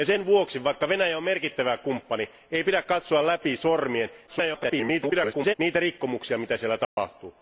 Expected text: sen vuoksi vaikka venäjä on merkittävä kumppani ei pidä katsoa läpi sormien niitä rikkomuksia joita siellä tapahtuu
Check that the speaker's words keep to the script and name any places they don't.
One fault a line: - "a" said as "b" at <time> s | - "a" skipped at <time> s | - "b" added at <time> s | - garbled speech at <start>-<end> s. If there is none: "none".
- garbled speech at 4.3-5.5 s